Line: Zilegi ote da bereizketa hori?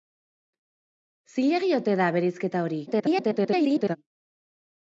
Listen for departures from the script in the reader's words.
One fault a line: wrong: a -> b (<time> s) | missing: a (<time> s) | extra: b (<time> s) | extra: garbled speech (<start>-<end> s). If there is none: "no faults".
extra: garbled speech (2.9-4.0 s)